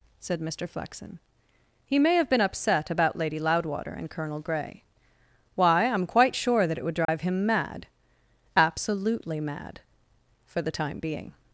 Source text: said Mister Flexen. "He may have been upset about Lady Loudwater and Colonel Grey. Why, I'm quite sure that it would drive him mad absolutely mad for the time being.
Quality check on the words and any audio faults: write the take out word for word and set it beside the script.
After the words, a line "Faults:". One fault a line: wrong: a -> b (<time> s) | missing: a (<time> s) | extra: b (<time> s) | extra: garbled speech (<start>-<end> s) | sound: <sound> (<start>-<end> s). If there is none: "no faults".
said Mister Flexen. "He may have been upset about Lady Loudwater and Colonel Grey. Why, I'm quite sure that it would drive him mad absolutely mad for the time being.
Faults:
sound: dropout (7.0-7.1 s)